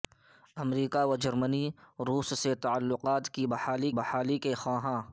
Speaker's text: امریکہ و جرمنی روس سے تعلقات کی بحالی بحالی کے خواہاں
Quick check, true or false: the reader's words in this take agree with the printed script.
true